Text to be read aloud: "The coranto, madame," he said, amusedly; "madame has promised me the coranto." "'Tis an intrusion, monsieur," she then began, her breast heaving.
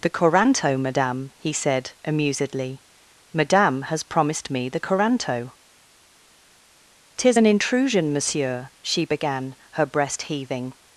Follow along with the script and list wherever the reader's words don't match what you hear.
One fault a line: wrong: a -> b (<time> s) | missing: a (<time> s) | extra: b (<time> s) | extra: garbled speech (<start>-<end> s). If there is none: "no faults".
missing: then (9.0 s)